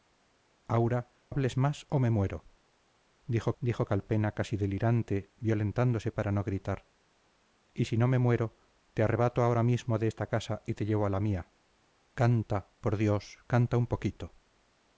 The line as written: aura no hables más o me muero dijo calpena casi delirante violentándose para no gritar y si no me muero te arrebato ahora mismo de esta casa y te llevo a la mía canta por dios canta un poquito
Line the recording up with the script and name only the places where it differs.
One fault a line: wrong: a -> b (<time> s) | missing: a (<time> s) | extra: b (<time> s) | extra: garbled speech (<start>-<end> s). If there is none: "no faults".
missing: no (1.1 s)
extra: dijo (3.6 s)